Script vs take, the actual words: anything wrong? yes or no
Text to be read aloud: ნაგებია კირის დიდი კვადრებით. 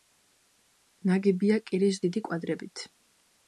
no